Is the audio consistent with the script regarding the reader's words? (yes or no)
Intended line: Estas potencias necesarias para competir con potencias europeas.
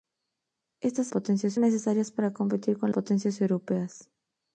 yes